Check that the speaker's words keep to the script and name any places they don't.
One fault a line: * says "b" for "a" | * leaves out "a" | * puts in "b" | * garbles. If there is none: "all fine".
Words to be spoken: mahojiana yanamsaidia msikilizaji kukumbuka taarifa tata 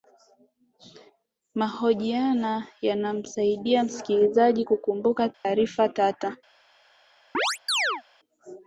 all fine